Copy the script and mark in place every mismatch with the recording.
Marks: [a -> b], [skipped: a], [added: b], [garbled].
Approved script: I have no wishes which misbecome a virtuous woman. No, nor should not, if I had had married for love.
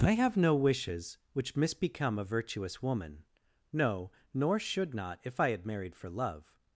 I have no wishes which misbecome a virtuous woman. No, nor should not, if I had [skipped: had] married for love.